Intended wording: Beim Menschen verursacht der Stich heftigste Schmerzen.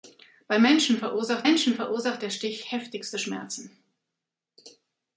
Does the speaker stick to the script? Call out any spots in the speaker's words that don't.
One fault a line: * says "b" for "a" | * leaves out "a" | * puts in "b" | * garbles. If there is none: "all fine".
* puts in "Menschen verursacht"